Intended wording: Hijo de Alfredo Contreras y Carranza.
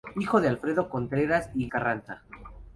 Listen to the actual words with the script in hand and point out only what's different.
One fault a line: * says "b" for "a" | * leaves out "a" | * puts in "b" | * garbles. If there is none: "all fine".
all fine